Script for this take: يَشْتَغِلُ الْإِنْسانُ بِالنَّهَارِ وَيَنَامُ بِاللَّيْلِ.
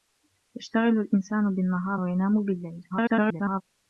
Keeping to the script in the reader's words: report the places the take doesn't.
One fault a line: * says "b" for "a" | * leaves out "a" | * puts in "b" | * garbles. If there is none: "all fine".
* garbles